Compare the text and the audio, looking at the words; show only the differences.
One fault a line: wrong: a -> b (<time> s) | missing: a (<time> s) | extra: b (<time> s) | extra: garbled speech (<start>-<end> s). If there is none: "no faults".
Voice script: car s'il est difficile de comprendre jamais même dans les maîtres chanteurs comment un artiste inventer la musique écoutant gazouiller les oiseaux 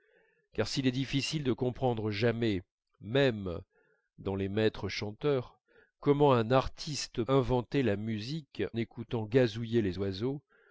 no faults